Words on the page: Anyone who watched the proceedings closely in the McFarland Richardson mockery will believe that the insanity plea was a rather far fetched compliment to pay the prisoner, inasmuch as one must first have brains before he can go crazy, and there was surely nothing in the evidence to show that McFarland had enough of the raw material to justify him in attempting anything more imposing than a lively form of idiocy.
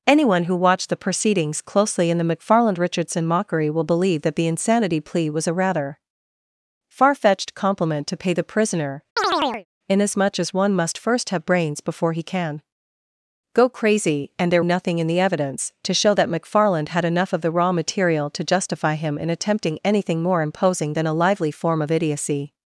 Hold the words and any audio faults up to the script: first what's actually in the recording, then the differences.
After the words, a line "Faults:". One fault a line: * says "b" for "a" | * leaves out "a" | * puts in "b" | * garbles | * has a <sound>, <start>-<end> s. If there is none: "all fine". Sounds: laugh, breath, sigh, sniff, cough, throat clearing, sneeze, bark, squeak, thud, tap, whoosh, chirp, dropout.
Anyone who watched the proceedings closely in the McFarland Richardson mockery will believe that the insanity plea was a rather far fetched compliment to pay the prisoner, inasmuch as one must first have brains before he can go crazy, and there nothing in the evidence to show that McFarland had enough of the raw material to justify him in attempting anything more imposing than a lively form of idiocy.
Faults:
* has a chirp, 9.2-9.7 s
* leaves out "was surely"